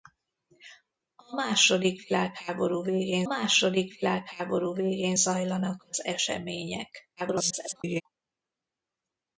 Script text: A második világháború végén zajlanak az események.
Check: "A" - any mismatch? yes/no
no